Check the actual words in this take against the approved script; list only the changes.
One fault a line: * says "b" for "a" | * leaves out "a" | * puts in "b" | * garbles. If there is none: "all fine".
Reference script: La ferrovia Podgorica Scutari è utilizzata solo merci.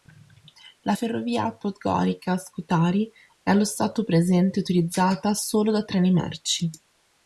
* puts in "allo stato presente"
* puts in "da treni"